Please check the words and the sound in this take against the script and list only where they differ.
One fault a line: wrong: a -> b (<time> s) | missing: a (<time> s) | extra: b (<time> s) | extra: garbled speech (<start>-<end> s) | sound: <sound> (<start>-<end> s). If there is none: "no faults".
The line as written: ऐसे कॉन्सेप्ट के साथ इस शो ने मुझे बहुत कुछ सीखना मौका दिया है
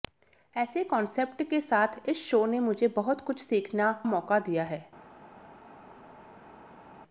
no faults